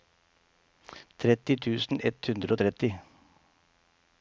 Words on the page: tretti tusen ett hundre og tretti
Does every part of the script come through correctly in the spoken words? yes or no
yes